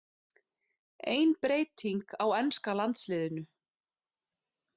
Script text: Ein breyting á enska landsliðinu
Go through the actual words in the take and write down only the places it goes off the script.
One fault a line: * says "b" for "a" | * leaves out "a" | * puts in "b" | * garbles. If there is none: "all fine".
all fine